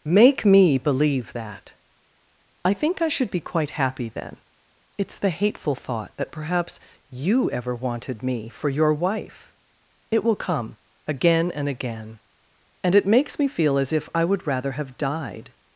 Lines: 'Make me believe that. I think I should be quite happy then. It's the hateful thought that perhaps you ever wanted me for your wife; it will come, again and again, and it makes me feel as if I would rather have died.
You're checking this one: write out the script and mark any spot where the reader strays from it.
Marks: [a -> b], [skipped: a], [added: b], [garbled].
'Make me believe that. I think I should be quite happy then. It's the hateful thought that perhaps you ever wanted me for your wife; it will come, again and again, and it makes me feel as if I would rather have died.